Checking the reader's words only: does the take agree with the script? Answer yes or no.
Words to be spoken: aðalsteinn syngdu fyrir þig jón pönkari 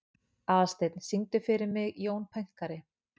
no